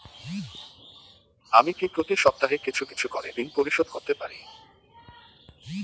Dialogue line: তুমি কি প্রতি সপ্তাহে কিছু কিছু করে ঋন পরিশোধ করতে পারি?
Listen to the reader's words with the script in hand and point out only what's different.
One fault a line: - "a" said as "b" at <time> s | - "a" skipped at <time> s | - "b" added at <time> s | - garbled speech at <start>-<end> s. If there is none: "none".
- "তুমি" said as "আমি" at 1.5 s